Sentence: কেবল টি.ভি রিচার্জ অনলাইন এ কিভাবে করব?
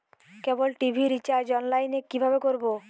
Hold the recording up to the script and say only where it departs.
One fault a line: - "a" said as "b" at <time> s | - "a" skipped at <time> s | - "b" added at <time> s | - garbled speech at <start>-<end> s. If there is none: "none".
none